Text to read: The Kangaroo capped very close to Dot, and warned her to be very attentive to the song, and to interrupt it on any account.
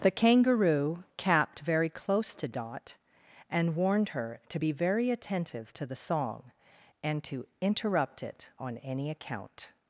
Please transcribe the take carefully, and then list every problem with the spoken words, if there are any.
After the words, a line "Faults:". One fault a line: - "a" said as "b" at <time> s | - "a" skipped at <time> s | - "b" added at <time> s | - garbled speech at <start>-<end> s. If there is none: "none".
The Kangaroo capped very close to Dot, and warned her to be very attentive to the song, and to interrupt it on any account.
Faults:
none